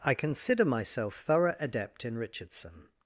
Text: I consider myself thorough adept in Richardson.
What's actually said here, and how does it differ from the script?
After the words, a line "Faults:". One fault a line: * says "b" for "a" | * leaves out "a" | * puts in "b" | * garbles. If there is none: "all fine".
I consider myself thorough adept in Richardson.
Faults:
all fine